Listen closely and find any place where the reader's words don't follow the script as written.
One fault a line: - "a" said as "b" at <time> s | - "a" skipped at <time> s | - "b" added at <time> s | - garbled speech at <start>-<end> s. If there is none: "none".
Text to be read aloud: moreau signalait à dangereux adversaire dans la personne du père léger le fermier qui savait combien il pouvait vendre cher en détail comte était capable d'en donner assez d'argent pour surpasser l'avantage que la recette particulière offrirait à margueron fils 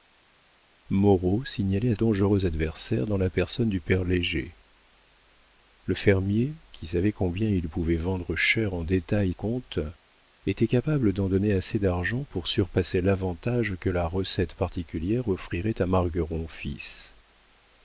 none